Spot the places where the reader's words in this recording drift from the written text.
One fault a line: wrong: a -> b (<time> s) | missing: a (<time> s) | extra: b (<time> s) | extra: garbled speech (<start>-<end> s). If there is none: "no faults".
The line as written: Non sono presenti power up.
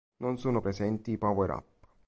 no faults